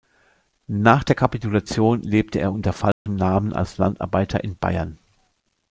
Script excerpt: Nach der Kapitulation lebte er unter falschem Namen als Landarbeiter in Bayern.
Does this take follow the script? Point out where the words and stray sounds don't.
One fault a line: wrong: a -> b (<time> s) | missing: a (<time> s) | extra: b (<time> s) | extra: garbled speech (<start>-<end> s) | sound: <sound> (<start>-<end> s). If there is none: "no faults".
sound: dropout (2.9-3.1 s)